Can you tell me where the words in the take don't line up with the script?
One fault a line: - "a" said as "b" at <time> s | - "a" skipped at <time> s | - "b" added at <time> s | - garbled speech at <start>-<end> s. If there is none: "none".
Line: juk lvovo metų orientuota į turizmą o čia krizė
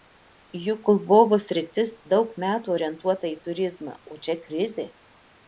- "sritis daug" added at 1.4 s